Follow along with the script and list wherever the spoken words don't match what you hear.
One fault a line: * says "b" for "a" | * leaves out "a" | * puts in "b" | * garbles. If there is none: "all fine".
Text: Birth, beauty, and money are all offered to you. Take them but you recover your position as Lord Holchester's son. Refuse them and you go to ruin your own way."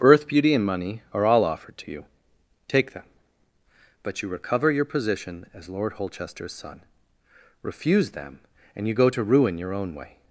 all fine